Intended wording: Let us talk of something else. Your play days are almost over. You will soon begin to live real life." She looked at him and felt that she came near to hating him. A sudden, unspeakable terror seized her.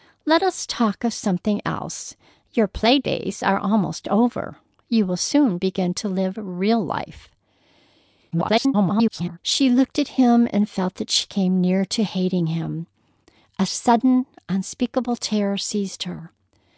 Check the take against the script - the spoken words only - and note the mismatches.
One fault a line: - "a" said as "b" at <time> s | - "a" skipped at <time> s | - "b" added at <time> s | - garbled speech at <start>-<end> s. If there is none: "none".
- garbled speech at 8.3-9.4 s